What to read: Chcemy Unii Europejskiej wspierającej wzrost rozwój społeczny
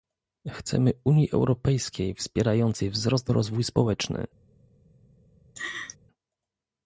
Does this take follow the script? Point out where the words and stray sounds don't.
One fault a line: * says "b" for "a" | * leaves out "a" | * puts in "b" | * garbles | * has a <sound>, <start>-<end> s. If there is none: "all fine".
* has a laugh, 5.6-6.0 s